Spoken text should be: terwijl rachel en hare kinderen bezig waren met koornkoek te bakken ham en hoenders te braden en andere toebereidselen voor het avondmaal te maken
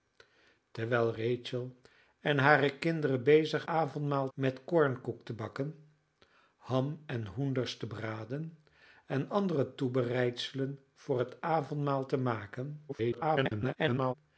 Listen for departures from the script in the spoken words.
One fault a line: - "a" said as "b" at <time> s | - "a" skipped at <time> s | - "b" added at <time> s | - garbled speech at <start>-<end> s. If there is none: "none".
- "waren" said as "avondmaal" at 3.7 s
- garbled speech at 12.9-14.1 s